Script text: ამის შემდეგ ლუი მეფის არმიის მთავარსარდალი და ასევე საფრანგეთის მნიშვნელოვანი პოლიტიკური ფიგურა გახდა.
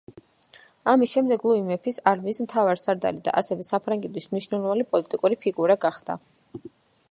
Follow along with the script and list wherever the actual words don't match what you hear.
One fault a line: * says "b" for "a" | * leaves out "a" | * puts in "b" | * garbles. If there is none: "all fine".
all fine